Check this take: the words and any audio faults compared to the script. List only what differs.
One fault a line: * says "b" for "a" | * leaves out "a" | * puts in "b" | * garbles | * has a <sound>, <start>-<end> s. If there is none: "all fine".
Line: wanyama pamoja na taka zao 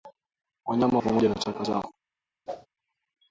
* has a whoosh, 2.5-2.7 s